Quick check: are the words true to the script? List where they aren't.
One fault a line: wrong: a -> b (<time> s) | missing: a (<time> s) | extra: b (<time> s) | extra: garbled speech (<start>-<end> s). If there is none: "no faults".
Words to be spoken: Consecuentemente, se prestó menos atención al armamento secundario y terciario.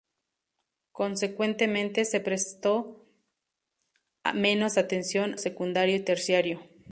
missing: al armamento (5.4 s)